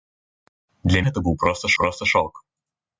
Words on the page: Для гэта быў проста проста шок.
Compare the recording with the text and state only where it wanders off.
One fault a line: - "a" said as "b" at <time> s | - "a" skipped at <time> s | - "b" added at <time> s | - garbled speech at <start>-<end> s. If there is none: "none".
none